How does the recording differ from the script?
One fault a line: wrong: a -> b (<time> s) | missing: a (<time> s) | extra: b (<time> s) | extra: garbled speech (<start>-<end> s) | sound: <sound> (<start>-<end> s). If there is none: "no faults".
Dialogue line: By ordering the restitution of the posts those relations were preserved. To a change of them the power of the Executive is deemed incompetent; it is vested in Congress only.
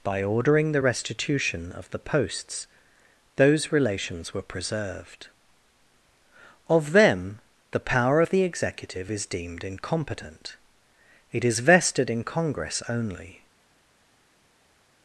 missing: To a change (5.3 s)